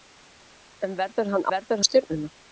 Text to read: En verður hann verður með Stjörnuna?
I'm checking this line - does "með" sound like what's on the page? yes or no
yes